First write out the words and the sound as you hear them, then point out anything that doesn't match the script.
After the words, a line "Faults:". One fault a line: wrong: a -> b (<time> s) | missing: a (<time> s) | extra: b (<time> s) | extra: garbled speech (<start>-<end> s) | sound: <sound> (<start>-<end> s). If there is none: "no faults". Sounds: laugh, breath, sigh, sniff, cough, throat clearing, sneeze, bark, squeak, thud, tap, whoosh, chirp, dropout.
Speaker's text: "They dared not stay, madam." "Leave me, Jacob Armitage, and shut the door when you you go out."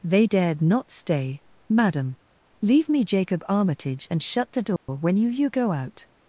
"They dared not stay, madam." "Leave me, Jacob Armitage, and shut the door when you you go out."
Faults:
sound: dropout (4.8-4.9 s)